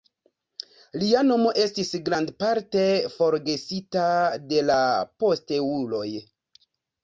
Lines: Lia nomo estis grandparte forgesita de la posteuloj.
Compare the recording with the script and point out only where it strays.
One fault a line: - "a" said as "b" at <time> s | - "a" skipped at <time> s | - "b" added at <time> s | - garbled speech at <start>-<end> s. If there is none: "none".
none